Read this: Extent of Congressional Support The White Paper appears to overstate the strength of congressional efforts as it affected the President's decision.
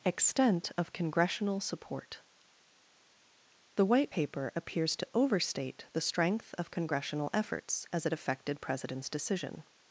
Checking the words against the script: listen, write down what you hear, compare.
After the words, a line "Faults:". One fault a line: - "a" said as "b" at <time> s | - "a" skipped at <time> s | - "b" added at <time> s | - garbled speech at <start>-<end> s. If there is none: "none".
Extent of Congressional Support The White Paper appears to overstate the strength of congressional efforts as it affected President's decision.
Faults:
- "the" skipped at 8.6 s